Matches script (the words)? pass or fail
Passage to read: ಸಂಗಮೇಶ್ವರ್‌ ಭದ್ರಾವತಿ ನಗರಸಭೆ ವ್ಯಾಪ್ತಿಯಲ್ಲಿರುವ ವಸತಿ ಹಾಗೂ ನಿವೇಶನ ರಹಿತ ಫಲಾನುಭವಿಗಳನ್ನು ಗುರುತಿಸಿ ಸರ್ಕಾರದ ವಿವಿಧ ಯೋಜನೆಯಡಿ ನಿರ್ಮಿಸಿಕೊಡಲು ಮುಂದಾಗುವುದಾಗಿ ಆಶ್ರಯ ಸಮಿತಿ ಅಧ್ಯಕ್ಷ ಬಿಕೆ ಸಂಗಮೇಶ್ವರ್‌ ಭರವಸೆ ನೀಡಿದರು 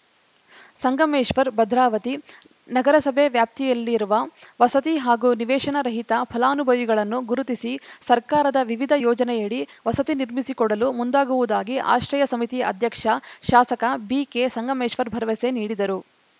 fail